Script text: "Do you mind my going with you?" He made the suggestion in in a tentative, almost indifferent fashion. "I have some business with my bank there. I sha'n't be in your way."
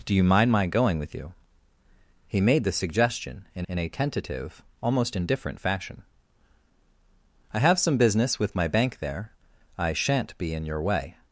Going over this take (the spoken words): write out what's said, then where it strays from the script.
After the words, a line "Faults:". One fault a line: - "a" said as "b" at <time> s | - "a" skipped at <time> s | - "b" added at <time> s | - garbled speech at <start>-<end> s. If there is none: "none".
"Do you mind my going with you?" He made the suggestion in in a tentative, almost indifferent fashion. "I have some business with my bank there. I sha'n't be in your way."
Faults:
none